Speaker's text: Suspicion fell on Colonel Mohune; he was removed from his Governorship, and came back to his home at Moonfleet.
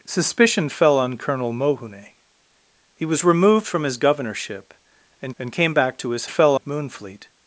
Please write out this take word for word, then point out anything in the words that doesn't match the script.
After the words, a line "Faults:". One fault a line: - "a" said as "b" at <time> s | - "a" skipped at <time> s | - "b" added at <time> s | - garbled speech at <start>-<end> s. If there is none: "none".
Suspicion fell on Colonel Mohune; he was removed from his Governorship, and and came back to his fell at Moonfleet.
Faults:
- "and" added at 5.4 s
- "home" said as "fell" at 6.2 s